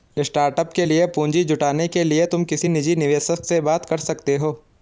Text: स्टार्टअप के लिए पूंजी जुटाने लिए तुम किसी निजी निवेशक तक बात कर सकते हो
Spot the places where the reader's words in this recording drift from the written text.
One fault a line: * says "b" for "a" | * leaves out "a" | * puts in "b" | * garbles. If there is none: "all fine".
* puts in "के"
* says "से" for "तक"